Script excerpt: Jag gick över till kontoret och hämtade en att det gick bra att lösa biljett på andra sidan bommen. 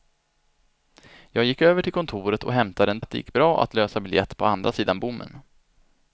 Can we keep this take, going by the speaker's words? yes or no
yes